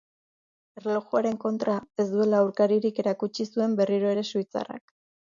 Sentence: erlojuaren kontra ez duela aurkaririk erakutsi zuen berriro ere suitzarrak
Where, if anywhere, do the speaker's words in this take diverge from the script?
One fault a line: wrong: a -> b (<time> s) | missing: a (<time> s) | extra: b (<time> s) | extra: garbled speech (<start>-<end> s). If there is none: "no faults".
no faults